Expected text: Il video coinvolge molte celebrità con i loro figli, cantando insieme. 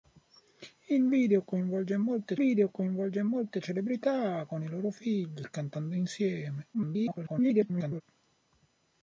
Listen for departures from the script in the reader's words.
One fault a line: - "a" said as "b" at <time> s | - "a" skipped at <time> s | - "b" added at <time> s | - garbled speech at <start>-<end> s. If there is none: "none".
- "video coinvolge molte" added at 2.3 s
- garbled speech at 6.7-8.0 s